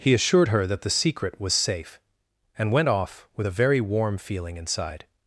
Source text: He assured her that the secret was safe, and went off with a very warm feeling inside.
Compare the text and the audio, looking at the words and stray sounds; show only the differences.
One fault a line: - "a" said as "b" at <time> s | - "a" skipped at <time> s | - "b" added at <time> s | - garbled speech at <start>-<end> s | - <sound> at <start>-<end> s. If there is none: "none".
none